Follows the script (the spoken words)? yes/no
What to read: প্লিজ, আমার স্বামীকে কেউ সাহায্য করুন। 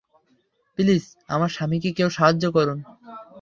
yes